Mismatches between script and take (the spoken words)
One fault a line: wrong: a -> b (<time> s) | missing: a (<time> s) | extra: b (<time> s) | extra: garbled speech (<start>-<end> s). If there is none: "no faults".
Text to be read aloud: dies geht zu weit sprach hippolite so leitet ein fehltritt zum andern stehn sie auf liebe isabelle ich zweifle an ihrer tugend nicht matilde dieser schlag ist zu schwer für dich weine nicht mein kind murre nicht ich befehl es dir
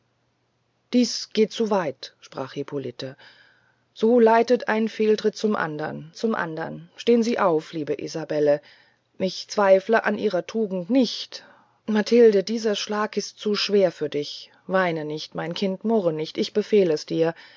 extra: zum andern (6.2 s)